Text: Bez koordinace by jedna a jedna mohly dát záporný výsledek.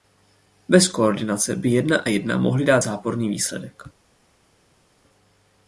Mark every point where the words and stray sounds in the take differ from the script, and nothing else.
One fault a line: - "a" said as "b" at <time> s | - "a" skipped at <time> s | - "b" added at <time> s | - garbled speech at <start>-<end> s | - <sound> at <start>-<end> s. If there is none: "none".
none